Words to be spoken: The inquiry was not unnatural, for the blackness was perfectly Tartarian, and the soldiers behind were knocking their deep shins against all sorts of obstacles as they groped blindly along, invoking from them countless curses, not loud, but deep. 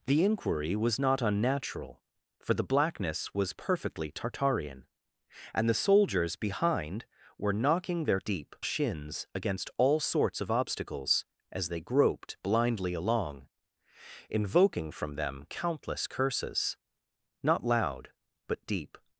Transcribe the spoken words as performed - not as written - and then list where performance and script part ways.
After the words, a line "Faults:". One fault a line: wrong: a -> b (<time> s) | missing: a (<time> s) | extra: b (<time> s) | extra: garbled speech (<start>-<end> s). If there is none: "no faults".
The inquiry was not unnatural, for the blackness was perfectly Tartarian, and the soldiers behind were knocking their deep shins against all sorts of obstacles as they groped blindly along, invoking from them countless curses, not loud, but deep.
Faults:
no faults